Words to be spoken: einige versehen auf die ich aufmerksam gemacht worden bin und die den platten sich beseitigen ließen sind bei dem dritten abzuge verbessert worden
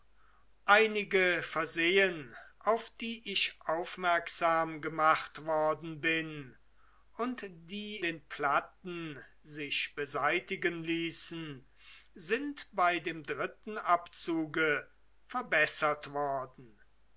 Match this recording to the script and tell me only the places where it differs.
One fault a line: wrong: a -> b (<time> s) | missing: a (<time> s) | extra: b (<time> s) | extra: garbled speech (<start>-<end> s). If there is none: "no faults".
no faults